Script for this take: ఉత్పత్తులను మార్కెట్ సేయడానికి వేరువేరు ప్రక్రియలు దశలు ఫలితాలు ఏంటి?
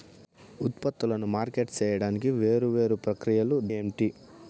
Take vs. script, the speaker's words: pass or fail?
fail